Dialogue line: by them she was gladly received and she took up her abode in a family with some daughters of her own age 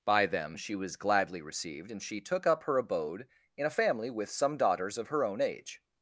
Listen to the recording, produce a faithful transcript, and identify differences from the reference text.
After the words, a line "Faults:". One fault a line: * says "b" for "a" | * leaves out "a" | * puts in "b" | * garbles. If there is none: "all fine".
by them she was gladly received and she took up her abode in a family with some daughters of her own age
Faults:
all fine